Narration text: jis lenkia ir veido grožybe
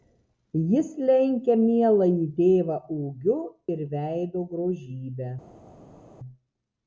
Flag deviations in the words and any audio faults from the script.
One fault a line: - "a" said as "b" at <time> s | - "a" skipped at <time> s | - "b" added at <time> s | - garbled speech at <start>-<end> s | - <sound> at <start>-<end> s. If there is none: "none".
- "mieląjį tėvą ūgiu" added at 1.6 s